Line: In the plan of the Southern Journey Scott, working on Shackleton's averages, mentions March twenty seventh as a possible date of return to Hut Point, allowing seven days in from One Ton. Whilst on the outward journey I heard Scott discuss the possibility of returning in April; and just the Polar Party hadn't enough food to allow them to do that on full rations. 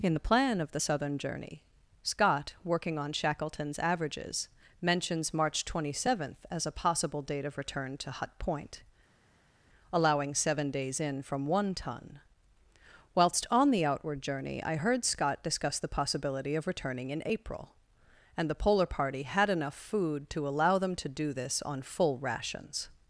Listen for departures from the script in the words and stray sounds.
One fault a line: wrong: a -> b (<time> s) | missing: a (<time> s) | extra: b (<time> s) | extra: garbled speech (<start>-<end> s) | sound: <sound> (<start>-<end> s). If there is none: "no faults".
missing: just (18.5 s)
wrong: hadn't -> had (19.2 s)
wrong: that -> this (21.3 s)